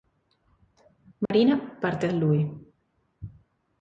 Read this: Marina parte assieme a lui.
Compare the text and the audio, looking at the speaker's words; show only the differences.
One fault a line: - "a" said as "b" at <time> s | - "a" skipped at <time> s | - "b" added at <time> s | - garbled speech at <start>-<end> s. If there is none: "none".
- "assieme" skipped at 2.1 s